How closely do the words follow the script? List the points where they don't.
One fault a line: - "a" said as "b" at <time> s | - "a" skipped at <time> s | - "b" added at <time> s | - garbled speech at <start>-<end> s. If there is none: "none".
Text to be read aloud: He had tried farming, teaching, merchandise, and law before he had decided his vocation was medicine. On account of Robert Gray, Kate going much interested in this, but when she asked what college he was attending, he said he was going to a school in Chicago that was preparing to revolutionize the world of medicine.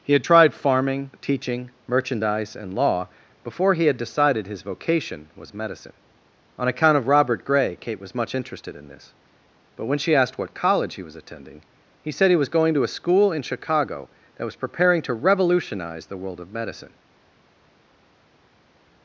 - "going" said as "was" at 8.0 s